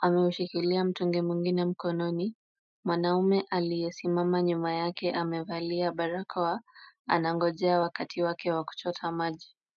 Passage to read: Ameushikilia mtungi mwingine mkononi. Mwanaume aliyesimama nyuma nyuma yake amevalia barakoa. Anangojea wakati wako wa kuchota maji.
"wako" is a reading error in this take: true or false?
true